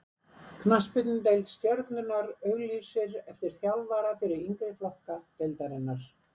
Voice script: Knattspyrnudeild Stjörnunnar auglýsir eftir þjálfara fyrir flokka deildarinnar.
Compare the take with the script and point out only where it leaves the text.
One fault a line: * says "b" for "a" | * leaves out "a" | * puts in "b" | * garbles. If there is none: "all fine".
* puts in "yngri"